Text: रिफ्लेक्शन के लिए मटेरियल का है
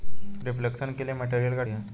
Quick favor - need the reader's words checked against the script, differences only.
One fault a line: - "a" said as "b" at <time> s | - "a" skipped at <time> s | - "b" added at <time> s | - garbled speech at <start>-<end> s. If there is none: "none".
none